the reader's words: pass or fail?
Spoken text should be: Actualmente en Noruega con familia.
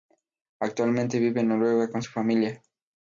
fail